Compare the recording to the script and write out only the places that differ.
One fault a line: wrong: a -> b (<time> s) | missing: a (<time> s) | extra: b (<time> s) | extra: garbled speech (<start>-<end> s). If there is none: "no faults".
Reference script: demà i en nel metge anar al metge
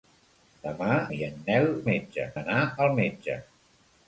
no faults